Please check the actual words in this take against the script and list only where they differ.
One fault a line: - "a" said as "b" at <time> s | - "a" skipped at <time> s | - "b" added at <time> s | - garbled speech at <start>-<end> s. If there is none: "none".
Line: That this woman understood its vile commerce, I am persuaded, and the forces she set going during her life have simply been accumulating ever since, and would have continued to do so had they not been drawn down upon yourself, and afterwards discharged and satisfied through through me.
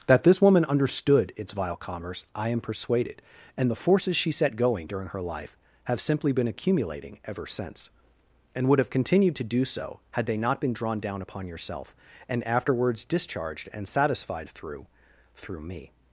none